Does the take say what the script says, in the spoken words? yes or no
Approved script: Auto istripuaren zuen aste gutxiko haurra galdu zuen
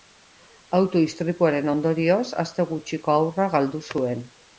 no